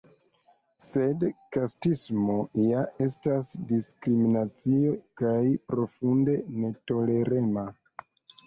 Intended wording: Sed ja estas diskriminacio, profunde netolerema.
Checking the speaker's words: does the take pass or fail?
fail